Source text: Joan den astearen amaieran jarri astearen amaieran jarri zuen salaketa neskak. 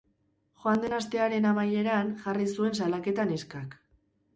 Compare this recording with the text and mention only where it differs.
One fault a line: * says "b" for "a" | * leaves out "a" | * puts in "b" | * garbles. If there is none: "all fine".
* leaves out "astearen amaieran jarri"